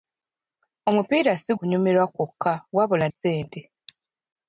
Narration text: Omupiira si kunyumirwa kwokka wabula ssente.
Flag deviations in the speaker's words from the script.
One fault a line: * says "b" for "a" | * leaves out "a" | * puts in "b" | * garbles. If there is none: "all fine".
all fine